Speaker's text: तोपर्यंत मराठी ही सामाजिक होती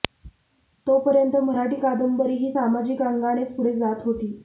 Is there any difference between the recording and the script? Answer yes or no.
yes